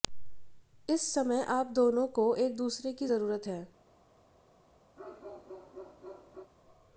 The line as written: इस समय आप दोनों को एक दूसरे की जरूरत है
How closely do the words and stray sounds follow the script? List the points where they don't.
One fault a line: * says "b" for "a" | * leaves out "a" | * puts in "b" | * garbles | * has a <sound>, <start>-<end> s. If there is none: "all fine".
* has a bark, 5.0-6.5 s